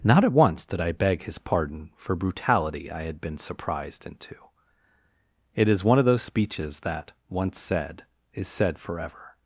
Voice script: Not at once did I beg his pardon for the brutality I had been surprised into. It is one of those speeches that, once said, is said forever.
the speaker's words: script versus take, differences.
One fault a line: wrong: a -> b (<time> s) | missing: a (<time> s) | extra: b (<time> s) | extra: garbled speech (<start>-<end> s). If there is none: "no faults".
missing: the (2.1 s)